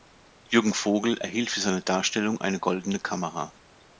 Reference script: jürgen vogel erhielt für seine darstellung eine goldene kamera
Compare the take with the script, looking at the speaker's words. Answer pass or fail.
pass